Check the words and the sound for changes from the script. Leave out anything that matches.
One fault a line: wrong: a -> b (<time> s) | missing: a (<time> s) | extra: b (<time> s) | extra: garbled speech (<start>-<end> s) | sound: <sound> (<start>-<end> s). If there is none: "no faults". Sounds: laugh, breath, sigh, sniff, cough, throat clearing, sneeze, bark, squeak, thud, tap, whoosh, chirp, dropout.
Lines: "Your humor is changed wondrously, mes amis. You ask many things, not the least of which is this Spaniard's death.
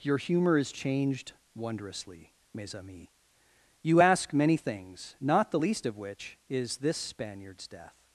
no faults